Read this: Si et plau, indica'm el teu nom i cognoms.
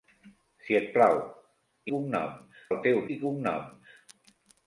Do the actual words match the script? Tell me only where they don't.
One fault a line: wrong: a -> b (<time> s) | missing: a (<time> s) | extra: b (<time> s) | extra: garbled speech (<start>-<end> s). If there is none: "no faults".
wrong: indica'm -> cognoms (1.9 s)
missing: nom (3.0 s)